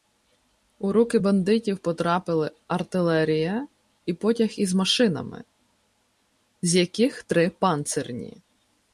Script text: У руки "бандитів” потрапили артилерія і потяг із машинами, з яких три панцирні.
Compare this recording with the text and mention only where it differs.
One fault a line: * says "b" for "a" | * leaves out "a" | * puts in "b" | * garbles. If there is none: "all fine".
all fine